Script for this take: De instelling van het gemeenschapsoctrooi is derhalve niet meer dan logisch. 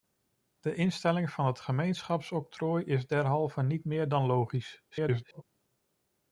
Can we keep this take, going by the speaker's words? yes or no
no